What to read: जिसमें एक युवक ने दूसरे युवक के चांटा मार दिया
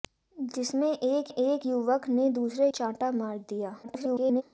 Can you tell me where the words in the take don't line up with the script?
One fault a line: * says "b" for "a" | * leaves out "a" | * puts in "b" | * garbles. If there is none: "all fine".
* puts in "एक"
* leaves out "युवक के"
* garbles